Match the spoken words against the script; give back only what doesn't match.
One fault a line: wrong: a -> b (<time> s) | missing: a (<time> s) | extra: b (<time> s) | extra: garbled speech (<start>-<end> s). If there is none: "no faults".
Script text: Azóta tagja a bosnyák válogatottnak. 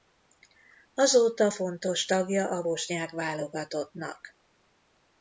extra: fontos (1.5 s)